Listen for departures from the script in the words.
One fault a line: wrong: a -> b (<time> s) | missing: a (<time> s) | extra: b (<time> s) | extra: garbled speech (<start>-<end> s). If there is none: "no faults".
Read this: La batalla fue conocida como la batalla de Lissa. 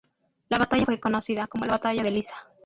no faults